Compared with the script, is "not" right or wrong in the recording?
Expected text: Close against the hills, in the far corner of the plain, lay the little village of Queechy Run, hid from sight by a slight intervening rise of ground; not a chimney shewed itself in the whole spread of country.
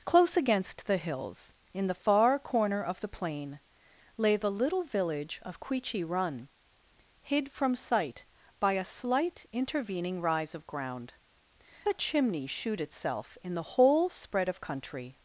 wrong